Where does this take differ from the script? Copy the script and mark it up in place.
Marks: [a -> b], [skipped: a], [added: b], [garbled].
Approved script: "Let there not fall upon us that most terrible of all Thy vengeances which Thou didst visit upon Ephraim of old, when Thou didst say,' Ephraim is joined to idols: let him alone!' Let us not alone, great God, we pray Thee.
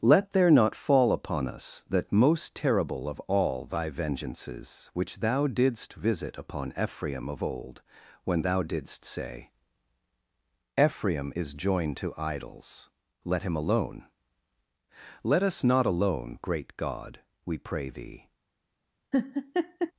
"Let there not fall upon us that most terrible of all Thy vengeances which Thou didst visit upon Ephraim of old, when Thou didst say,' Ephraim is joined to idols: let him alone!' Let us not alone, great God, we pray Thee.